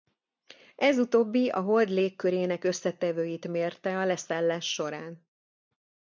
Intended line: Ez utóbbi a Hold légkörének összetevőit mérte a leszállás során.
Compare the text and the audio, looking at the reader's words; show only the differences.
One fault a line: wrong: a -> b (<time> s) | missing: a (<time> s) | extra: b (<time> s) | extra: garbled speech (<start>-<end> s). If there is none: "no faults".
no faults